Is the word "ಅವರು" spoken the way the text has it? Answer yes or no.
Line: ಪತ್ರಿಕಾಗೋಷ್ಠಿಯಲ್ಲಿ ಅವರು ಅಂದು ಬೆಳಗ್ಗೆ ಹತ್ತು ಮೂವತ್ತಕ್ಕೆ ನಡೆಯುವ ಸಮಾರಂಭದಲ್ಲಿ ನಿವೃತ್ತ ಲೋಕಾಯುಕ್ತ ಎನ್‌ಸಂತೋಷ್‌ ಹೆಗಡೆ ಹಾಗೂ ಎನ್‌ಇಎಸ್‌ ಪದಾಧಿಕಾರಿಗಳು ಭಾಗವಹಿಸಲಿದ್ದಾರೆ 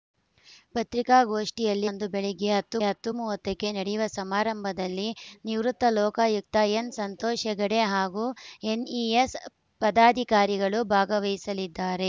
no